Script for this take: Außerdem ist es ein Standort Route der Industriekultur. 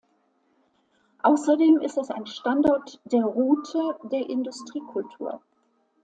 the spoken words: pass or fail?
fail